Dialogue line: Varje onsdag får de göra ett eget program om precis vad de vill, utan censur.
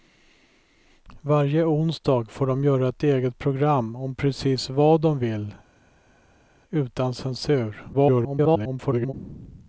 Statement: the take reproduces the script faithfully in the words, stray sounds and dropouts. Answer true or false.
false